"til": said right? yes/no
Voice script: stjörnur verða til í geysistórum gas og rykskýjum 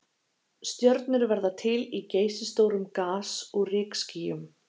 yes